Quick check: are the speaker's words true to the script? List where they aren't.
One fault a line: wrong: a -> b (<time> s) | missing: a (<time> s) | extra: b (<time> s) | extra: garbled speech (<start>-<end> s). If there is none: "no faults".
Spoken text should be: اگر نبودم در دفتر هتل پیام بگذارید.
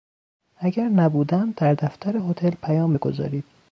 no faults